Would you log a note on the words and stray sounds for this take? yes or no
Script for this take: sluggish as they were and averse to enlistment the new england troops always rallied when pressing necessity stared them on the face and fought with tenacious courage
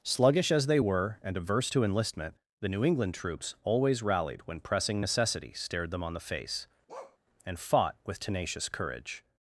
yes